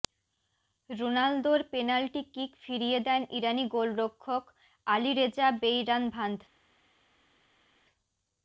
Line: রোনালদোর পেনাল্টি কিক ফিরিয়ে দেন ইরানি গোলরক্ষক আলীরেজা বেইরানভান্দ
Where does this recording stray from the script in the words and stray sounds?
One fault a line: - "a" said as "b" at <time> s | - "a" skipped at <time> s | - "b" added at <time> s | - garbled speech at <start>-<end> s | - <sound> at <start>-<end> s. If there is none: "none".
none